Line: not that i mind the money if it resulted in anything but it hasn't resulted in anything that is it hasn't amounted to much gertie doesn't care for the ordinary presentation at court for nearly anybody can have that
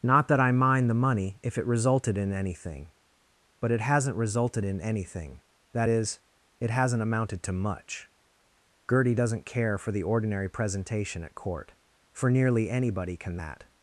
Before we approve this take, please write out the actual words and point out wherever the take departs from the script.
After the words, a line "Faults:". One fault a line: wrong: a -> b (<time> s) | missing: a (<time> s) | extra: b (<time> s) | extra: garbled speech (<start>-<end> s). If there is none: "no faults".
not that i mind the money if it resulted in anything but it hasn't resulted in anything that is it hasn't amounted to much gertie doesn't care for the ordinary presentation at court for nearly anybody can that
Faults:
missing: have (13.4 s)